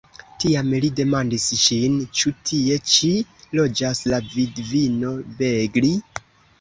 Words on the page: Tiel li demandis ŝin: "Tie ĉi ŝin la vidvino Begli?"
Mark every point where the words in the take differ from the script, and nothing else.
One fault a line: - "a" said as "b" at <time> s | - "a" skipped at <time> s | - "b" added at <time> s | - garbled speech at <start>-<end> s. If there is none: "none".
- "Tiel" said as "Tiam" at 0.4 s
- "Ĉu" added at 2.2 s
- "ŝin" said as "loĝas" at 3.6 s